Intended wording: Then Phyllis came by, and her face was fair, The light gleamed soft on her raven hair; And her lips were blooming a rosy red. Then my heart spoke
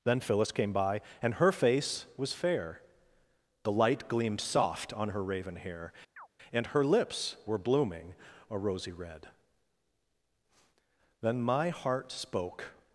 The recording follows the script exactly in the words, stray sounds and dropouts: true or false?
false